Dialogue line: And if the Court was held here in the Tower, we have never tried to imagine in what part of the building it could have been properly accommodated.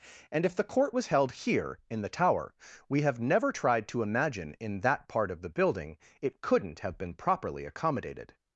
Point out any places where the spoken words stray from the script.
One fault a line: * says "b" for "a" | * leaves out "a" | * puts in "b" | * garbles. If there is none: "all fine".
* says "that" for "what"
* says "couldn't" for "could"